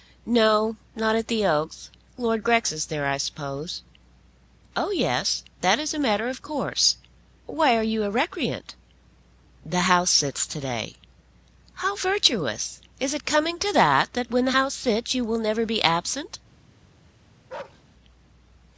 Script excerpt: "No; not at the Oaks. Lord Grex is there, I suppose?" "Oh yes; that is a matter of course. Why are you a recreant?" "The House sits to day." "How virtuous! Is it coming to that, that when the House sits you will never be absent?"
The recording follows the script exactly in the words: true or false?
true